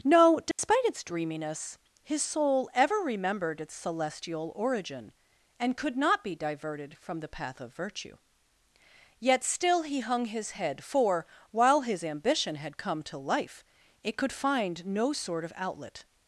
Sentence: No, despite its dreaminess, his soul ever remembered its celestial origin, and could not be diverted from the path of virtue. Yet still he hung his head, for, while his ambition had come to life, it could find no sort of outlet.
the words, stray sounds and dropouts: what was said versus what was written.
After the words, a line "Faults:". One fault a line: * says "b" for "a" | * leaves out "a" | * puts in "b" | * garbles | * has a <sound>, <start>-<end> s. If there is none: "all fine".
No, despite its dreaminess, his soul ever remembered its celestial origin, and could not be diverted from the path of virtue. Yet still he hung his head, for, while his ambition had come to life, it could find no sort of outlet.
Faults:
* has a dropout, 0.5-0.6 s